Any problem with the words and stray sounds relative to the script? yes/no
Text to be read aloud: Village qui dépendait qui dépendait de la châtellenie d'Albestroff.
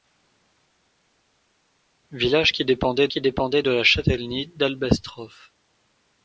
no